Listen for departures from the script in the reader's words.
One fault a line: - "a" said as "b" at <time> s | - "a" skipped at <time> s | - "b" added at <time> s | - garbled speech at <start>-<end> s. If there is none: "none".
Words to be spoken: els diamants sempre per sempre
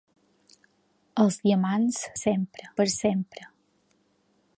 none